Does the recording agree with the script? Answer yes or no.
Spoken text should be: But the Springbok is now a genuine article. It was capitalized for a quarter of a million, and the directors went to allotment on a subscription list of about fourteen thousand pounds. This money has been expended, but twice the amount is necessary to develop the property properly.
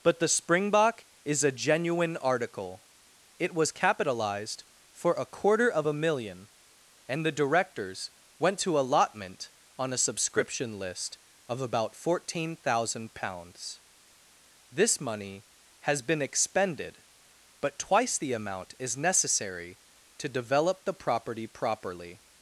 no